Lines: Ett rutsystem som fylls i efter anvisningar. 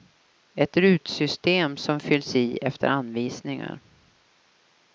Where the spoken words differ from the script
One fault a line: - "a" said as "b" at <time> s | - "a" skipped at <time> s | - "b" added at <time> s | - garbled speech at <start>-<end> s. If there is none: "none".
none